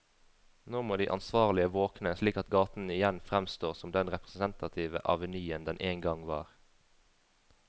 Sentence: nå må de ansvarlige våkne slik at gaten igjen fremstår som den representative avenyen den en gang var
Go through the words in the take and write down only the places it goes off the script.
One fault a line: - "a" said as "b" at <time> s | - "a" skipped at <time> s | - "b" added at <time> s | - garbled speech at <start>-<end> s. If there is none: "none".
none